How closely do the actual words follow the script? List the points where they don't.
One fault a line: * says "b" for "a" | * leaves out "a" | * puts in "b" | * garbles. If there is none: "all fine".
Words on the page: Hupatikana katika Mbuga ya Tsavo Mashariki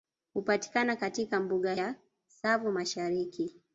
all fine